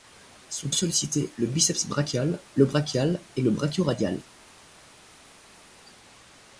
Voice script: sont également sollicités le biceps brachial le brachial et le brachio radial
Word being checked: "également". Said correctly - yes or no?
no